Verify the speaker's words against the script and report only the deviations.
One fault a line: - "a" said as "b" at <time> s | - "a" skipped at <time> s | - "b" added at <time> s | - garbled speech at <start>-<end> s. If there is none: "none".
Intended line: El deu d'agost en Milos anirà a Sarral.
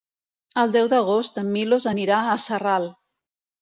none